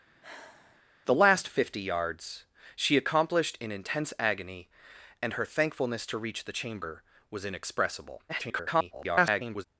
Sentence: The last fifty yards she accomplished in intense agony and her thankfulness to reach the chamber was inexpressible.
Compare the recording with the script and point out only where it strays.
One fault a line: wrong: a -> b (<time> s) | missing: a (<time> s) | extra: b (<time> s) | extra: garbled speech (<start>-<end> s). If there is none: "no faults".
extra: garbled speech (8.3-9.6 s)